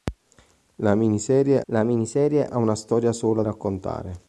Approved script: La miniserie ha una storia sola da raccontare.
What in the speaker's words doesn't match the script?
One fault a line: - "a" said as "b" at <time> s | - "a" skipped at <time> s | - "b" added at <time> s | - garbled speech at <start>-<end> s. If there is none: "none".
- "la miniserie" added at 1.7 s
- "da" skipped at 3.4 s